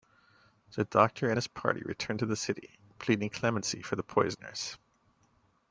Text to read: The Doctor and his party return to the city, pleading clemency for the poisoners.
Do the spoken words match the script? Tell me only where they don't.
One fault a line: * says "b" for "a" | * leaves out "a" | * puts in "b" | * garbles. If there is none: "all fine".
all fine